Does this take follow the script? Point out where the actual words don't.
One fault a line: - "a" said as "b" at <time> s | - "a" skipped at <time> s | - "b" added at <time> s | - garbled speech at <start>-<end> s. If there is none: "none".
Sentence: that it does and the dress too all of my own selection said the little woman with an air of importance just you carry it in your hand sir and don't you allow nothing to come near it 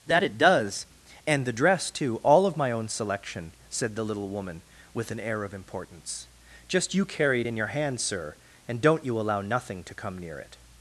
none